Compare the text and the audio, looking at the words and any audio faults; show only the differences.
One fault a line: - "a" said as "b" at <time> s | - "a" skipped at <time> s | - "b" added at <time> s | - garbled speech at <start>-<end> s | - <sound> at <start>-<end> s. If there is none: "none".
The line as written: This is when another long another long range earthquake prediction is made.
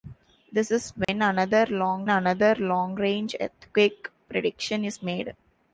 - dropout at 1.0-1.1 s